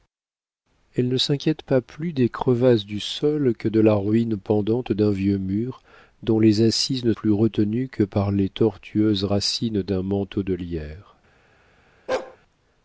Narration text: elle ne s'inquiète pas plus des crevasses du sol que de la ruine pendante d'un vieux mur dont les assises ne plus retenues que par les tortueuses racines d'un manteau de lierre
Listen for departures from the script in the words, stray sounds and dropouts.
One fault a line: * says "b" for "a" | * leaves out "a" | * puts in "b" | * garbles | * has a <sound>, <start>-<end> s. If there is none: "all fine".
* has a bark, 12.1-12.4 s